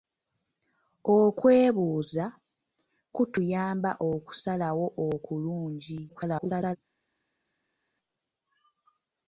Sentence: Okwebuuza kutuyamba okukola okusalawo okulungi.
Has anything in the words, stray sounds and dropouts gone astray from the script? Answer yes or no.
yes